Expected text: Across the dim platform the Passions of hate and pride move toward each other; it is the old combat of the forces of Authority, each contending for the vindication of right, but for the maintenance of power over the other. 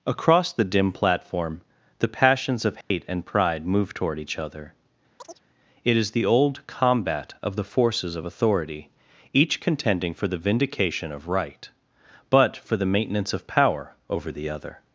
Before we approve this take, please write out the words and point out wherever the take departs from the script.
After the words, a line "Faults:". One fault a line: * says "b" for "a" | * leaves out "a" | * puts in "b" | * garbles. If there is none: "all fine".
Across the dim platform the Passions of hate and pride move toward each other; it is the old combat of the forces of Authority, each contending for the vindication of right, but for the maintenance of power over the other.
Faults:
all fine